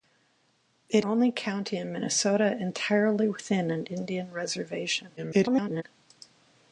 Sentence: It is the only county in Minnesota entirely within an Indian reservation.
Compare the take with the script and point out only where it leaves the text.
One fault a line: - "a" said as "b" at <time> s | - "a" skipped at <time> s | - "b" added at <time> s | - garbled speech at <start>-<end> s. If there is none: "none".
- "is the" skipped at 1.1 s
- garbled speech at 5.2-5.8 s